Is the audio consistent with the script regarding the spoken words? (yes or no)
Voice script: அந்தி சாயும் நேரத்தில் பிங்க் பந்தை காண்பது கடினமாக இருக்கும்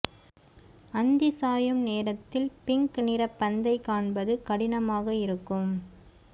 no